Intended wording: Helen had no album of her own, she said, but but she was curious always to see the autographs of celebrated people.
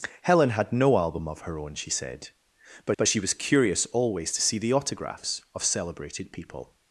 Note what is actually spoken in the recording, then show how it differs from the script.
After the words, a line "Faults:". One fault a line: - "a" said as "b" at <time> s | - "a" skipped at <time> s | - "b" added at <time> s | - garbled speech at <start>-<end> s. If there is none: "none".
Helen had no album of her own, she said, but but she was curious always to see the autographs of celebrated people.
Faults:
none